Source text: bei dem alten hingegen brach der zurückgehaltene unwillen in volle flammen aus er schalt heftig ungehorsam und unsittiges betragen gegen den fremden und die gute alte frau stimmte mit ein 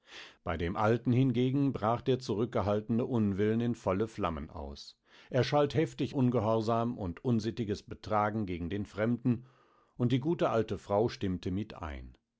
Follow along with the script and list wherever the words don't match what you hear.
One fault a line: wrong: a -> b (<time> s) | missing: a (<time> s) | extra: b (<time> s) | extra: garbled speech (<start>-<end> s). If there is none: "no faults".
no faults